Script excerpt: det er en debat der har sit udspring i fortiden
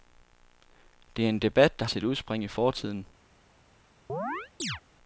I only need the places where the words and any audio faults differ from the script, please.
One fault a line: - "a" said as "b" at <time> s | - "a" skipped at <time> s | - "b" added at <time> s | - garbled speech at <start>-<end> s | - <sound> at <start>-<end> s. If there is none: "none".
- "har" skipped at 1.9 s
- chirp at 4.1-4.8 s